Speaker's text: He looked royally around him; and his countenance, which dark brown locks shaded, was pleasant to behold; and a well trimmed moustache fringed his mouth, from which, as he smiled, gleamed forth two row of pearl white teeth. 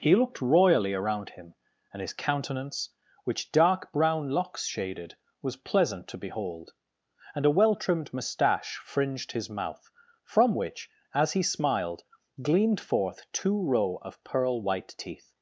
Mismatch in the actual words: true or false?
false